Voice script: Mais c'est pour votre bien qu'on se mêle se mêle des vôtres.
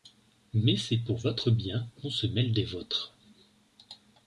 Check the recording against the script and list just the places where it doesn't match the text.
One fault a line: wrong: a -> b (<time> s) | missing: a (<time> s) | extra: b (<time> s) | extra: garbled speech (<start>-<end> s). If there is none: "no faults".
missing: se mêle (2.5 s)